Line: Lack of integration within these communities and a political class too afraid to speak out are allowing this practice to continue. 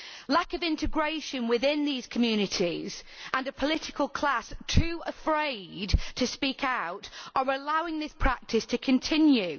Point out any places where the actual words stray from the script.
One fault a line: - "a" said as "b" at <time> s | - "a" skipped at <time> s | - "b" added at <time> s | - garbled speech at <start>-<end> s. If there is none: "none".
none